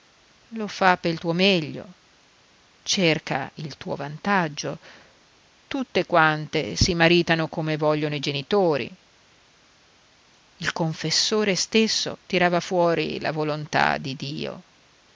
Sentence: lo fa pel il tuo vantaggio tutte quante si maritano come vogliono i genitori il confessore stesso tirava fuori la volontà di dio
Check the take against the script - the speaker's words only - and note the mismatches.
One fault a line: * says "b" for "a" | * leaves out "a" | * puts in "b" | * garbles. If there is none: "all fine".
* puts in "tuo meglio cerca"